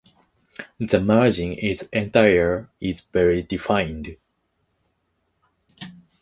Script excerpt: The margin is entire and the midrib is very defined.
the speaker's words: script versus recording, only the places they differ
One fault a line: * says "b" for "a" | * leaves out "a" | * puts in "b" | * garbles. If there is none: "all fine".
* leaves out "and the midrib"